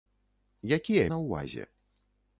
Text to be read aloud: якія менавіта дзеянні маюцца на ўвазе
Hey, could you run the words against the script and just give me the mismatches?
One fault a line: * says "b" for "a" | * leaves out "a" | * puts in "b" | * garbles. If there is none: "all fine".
* leaves out "менавіта дзеянні маюцца"